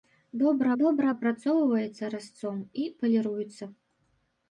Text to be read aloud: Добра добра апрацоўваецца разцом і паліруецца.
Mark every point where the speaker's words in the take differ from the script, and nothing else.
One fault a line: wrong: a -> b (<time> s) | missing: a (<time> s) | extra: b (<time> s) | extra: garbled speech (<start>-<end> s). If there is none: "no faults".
no faults